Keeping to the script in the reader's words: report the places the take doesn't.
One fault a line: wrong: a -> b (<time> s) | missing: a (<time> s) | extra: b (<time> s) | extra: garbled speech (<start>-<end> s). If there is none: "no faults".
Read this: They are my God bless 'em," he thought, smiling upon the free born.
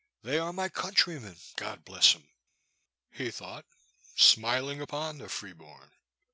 extra: countrymen (0.7 s)